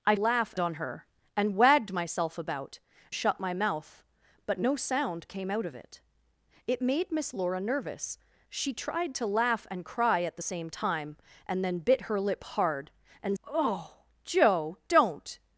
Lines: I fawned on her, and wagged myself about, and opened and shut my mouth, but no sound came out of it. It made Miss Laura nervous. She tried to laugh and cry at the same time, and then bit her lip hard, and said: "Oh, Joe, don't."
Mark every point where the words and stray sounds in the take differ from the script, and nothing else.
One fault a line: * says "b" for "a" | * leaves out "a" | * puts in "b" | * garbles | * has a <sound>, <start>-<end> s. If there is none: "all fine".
* says "laugh" for "fawned"
* leaves out "and opened and"
* leaves out "said"